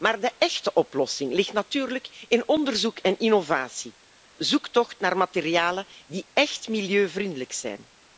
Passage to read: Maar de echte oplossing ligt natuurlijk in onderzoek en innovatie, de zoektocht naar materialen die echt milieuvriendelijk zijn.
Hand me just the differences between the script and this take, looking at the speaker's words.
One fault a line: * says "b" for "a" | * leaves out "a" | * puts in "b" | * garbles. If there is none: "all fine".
* leaves out "de"